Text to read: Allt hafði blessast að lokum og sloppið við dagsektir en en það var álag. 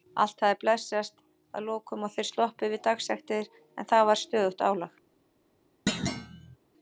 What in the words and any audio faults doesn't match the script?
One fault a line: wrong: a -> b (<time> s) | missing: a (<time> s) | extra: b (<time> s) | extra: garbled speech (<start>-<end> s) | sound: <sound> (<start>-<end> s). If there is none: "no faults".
extra: þeir (2.1 s)
missing: en (3.9 s)
extra: stöðugt (4.2 s)
sound: thud (5.9-6.6 s)